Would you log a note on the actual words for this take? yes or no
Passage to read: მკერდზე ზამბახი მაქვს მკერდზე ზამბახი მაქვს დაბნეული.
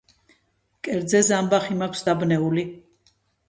yes